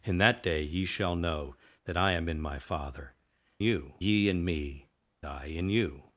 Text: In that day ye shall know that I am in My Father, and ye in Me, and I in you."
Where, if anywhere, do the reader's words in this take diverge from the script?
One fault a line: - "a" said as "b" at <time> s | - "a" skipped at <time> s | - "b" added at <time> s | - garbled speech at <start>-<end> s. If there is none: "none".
- "and" said as "you" at 3.6 s
- "and" skipped at 4.9 s